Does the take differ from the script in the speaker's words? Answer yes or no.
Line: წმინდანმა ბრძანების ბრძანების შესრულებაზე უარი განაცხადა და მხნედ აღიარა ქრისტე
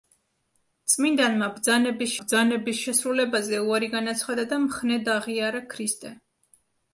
no